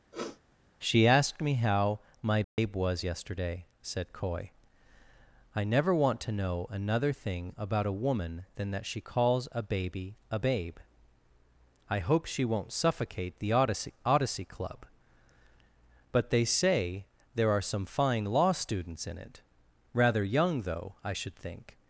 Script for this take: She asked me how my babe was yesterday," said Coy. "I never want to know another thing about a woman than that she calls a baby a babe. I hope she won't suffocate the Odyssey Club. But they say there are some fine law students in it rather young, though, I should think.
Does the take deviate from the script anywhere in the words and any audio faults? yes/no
yes